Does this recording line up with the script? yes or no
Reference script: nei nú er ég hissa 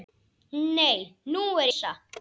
no